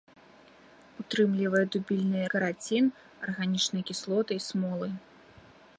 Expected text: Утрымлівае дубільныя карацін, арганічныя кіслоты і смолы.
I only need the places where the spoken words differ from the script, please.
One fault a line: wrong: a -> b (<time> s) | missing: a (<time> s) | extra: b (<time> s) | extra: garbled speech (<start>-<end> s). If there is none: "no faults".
no faults